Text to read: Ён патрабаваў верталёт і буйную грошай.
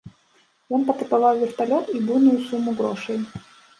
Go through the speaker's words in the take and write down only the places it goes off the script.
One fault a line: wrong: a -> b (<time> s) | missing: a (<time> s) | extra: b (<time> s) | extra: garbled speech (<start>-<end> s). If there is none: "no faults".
extra: суму (2.5 s)